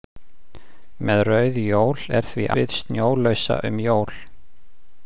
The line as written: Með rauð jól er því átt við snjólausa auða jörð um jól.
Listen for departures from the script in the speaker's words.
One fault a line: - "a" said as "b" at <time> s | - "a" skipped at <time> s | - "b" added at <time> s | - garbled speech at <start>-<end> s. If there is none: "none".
- "átt" skipped at 2.5 s
- "auða jörð" skipped at 3.6 s